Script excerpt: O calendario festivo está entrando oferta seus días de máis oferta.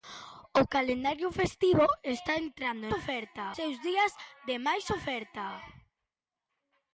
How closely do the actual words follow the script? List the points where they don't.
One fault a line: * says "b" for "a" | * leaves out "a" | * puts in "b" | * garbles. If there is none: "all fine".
all fine